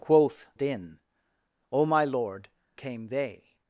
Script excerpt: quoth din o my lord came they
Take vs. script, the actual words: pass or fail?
pass